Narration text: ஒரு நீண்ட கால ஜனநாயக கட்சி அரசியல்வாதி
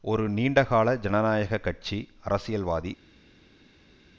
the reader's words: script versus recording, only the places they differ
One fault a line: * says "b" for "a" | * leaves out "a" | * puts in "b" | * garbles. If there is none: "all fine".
all fine